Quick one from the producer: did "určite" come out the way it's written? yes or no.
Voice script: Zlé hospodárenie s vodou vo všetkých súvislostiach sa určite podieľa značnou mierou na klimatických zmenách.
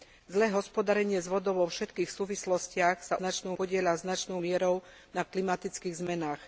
no